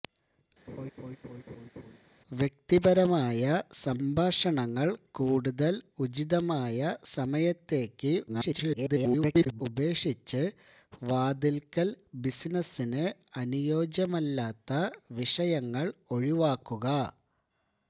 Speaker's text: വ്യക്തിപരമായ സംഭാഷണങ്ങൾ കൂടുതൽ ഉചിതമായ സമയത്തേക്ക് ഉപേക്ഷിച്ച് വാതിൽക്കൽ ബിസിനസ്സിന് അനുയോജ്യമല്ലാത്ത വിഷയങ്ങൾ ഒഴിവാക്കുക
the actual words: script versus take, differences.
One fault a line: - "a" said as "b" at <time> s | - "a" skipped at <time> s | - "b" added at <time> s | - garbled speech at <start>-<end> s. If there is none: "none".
- garbled speech at 8.3-9.6 s